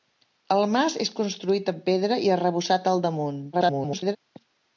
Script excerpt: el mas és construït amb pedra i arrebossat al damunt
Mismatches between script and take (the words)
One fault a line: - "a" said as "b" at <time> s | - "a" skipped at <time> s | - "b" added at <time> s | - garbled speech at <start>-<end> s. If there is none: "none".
- garbled speech at 3.5-4.2 s